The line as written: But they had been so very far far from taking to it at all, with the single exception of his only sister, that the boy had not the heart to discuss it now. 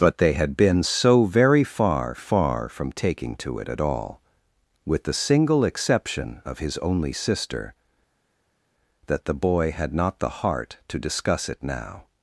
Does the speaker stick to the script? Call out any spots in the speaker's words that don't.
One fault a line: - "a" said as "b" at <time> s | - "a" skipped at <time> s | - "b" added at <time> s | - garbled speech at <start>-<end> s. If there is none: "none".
none